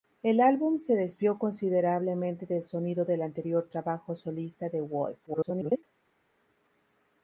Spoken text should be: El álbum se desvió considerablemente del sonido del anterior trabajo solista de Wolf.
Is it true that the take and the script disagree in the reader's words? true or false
true